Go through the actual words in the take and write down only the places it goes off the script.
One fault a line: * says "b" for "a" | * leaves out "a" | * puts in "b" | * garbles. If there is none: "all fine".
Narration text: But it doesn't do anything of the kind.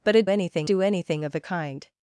* says "anything" for "doesn't"